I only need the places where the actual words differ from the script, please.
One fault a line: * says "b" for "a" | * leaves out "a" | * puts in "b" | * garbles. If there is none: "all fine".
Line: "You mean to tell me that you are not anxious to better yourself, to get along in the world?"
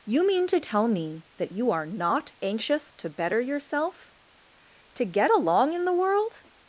all fine